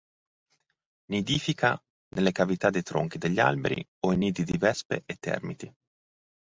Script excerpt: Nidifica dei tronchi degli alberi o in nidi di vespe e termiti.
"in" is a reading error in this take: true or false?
false